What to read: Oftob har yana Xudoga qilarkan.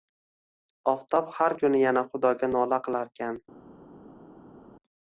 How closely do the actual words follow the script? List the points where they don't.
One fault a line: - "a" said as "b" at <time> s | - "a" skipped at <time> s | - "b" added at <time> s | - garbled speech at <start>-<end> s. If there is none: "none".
- "kuni" added at 1.6 s
- "nola" added at 2.5 s